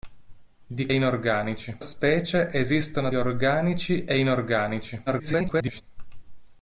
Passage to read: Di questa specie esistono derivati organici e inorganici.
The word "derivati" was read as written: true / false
false